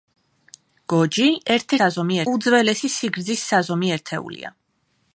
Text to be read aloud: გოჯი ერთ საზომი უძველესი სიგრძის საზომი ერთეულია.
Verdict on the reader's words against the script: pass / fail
pass